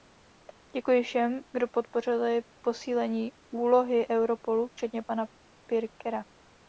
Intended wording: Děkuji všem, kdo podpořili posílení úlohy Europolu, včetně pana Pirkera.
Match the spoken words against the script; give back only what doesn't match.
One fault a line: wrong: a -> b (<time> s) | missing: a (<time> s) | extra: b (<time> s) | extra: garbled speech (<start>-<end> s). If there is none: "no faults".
no faults